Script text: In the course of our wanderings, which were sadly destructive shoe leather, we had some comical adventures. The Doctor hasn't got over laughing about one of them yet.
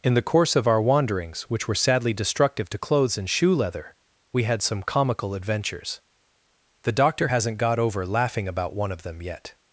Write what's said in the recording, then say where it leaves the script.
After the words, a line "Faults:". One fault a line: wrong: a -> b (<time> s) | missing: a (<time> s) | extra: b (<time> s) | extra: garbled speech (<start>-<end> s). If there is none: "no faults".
In the course of our wanderings, which were sadly destructive to clothes and shoe leather, we had some comical adventures. The Doctor hasn't got over laughing about one of them yet.
Faults:
extra: to clothes and (2.7 s)